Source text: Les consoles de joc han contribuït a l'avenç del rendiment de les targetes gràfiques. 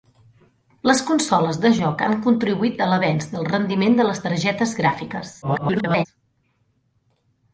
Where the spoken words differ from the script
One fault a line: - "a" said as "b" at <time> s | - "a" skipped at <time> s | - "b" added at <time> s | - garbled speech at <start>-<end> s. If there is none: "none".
- garbled speech at 5.4-6.1 s